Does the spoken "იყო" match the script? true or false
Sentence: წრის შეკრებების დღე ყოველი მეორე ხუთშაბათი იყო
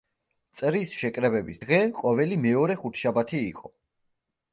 true